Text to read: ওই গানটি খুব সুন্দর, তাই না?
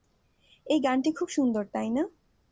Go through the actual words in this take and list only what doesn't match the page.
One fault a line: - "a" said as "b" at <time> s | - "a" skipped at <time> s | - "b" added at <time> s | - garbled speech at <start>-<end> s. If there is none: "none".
- "ওই" said as "এই" at 0.7 s